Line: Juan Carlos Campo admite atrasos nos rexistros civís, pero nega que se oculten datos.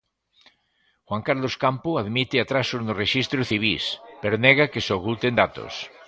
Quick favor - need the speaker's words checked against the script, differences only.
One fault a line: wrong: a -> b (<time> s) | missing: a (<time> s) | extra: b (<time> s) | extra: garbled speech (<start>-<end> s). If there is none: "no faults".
no faults